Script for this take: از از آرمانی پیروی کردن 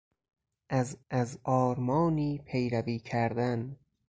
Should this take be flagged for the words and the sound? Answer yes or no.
no